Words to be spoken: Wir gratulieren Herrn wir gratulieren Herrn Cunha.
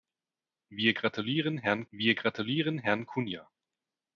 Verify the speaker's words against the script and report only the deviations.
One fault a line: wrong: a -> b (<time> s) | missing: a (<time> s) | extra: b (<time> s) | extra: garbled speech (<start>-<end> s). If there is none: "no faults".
no faults